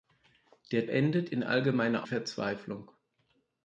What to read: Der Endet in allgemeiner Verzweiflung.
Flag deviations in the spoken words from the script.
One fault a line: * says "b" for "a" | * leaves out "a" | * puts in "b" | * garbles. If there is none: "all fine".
all fine